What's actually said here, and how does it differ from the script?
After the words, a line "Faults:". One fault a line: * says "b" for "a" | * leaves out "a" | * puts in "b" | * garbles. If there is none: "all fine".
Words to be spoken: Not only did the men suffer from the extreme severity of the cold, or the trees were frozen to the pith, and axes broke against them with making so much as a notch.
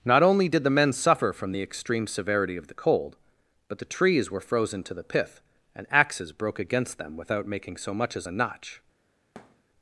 Not only did the men suffer from the extreme severity of the cold, but the trees were frozen to the pith, and axes broke against them without making so much as a notch.
Faults:
* says "but" for "or"
* says "without" for "with"